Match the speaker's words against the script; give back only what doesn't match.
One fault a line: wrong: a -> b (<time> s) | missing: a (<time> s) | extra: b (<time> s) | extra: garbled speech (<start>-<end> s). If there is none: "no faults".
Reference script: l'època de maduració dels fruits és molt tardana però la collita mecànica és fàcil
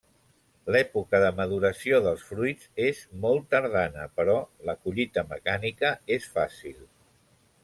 no faults